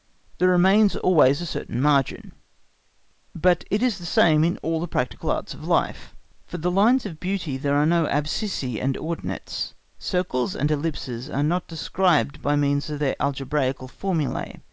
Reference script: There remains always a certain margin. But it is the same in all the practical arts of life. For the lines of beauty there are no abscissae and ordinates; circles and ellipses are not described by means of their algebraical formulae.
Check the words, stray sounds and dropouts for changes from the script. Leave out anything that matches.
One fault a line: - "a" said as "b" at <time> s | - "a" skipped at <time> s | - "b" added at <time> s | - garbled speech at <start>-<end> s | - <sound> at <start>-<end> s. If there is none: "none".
none